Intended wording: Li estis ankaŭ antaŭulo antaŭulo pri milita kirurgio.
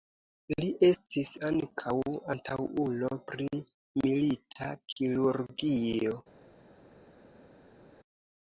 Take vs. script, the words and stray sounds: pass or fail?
fail